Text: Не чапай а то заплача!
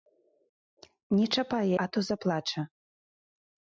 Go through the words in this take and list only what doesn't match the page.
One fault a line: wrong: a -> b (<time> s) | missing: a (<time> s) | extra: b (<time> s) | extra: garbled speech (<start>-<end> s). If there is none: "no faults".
no faults